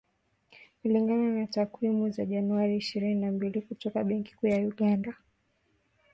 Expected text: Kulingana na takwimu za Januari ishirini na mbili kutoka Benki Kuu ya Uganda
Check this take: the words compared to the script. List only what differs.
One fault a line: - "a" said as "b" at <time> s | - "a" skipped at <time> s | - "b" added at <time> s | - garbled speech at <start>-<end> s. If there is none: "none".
none